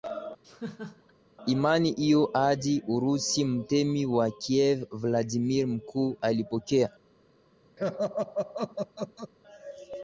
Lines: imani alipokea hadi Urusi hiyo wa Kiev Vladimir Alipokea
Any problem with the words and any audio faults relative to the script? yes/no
yes